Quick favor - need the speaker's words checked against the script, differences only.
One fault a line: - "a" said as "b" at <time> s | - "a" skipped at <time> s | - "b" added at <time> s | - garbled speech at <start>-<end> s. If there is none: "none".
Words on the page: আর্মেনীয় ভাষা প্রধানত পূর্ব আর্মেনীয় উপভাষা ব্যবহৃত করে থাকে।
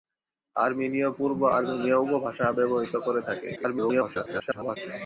- "ভাষা প্রধানত" skipped at 1.1 s
- garbled speech at 3.6-4.8 s